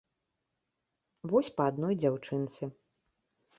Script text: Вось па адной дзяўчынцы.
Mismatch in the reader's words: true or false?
false